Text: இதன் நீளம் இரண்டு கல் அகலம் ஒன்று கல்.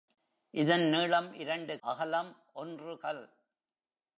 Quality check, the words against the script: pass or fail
fail